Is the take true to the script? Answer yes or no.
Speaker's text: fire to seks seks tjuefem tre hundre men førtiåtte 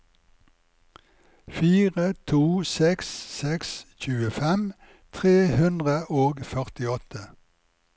no